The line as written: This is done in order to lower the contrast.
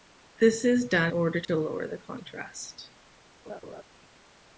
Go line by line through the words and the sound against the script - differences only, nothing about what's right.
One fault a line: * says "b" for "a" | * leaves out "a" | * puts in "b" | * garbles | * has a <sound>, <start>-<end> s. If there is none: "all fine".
* leaves out "in"
* has a dropout, 1.4-1.5 s
* has a laugh, 3.5-3.8 s